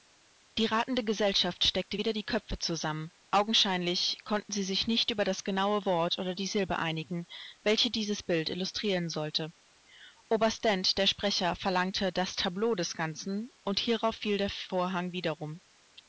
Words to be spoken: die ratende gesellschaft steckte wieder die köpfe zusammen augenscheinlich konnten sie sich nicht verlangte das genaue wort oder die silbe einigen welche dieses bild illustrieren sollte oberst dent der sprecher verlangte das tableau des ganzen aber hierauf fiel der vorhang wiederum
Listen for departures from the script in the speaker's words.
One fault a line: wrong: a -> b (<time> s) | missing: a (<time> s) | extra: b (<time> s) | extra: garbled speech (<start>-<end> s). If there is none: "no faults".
wrong: verlangte -> über (5.1 s)
wrong: aber -> und (13.6 s)